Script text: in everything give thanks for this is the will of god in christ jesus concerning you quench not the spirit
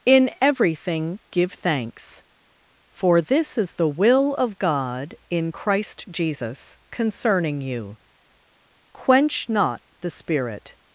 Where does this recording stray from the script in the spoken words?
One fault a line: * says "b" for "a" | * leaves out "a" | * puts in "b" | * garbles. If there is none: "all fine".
all fine